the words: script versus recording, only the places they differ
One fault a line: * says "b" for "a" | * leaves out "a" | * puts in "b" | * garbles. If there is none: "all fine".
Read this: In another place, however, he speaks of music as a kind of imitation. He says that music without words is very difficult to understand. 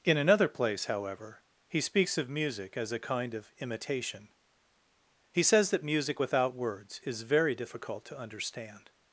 all fine